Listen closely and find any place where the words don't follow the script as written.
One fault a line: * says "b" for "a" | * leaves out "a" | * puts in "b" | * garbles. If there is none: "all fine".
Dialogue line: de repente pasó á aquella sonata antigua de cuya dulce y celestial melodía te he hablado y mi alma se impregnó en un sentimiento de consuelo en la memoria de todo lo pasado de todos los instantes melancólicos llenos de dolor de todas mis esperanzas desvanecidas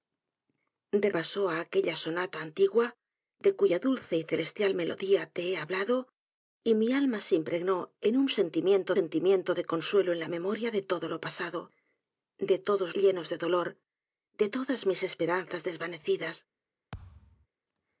* leaves out "repente"
* puts in "sentimiento"
* leaves out "los instantes melancólicos"